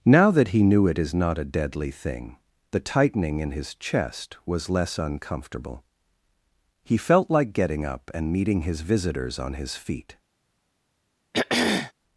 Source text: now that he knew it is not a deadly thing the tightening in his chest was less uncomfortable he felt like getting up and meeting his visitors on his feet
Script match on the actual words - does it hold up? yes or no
yes